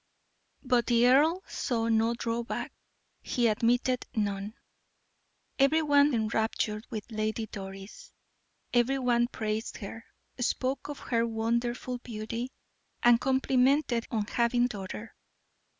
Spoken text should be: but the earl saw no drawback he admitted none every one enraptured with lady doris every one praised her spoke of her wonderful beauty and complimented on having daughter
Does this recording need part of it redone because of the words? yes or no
no